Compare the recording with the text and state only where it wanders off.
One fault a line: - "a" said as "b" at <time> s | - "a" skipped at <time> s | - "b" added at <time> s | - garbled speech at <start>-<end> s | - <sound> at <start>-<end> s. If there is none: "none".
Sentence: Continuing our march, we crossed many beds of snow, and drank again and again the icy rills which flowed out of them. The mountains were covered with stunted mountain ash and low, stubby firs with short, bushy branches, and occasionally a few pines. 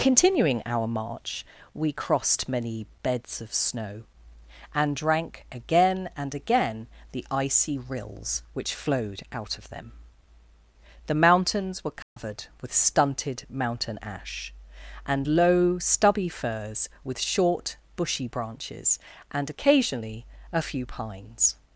- dropout at 12.0-12.2 s